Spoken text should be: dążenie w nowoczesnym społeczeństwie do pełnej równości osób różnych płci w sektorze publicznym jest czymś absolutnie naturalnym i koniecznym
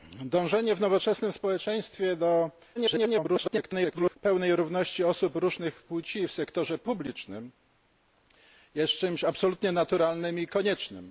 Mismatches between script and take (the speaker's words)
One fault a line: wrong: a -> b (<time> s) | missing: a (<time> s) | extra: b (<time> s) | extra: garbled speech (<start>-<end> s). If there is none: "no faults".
extra: garbled speech (2.8-4.2 s)